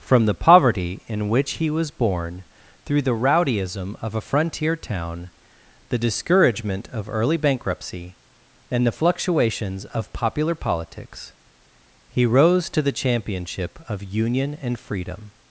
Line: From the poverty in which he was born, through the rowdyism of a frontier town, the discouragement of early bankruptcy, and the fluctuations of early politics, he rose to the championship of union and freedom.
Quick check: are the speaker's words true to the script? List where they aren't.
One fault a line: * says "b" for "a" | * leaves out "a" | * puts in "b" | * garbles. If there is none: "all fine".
* says "popular" for "early"